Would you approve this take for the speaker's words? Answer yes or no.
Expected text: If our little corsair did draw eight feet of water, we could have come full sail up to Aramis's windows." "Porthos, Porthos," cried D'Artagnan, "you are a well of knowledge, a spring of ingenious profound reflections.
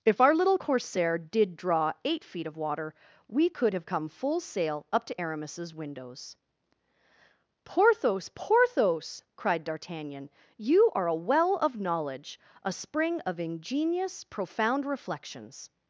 yes